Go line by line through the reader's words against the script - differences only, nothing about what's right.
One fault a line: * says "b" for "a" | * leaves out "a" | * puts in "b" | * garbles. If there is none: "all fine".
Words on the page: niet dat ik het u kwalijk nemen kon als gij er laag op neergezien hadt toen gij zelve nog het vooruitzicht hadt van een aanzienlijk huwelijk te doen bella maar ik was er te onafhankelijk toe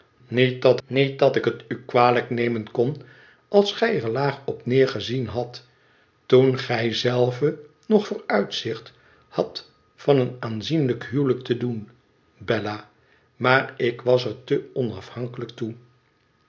* puts in "niet dat"
* leaves out "het"